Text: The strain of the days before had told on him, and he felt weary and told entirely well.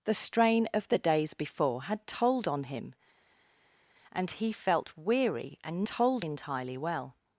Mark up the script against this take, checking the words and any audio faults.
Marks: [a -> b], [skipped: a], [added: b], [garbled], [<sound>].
The strain of the days before had told on him, and he felt weary and told entirely well.